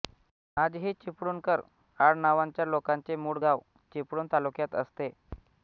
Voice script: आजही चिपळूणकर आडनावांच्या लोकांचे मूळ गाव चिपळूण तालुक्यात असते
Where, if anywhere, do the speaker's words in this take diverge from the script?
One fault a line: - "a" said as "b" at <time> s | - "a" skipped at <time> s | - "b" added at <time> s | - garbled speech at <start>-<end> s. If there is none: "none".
none